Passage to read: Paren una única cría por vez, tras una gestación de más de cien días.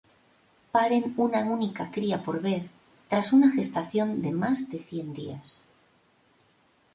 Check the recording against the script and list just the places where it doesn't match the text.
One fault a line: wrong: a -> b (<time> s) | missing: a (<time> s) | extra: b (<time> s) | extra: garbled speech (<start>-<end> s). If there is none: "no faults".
no faults